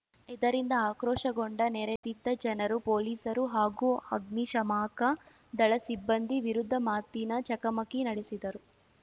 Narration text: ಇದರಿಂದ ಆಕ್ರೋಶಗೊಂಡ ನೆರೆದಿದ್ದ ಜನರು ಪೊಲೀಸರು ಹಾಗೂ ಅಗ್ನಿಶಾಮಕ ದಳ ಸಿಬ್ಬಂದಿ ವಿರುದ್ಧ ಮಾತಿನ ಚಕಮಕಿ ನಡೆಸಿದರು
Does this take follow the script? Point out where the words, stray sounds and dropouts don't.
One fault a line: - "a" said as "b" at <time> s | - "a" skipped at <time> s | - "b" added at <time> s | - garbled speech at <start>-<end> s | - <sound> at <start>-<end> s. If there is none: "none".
- dropout at 2.0-2.0 s